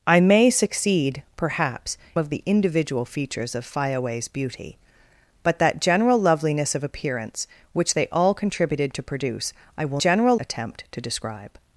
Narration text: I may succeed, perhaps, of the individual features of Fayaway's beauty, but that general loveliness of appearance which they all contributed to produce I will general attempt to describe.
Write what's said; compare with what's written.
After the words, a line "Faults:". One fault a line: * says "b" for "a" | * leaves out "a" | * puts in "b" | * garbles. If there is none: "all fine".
I may succeed, perhaps, of the individual features of Fayaway's beauty, but that general loveliness of appearance which they all contributed to produce I will general attempt to describe.
Faults:
all fine